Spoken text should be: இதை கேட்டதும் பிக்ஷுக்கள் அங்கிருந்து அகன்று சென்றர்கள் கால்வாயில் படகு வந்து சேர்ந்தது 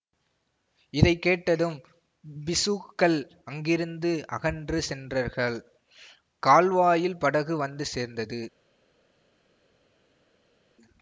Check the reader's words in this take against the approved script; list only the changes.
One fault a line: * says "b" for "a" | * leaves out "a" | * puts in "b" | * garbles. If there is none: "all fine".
all fine